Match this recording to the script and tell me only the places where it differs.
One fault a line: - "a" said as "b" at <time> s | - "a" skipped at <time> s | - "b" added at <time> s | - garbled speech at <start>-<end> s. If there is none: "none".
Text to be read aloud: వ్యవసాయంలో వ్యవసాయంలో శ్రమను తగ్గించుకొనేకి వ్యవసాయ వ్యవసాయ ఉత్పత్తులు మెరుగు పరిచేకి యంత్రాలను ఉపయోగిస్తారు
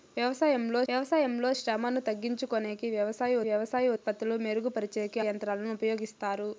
none